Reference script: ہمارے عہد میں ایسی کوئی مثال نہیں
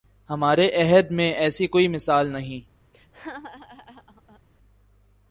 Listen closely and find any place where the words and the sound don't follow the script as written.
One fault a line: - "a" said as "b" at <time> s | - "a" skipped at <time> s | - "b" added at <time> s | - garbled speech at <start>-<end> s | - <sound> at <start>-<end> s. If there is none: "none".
- laugh at 2.9-4.4 s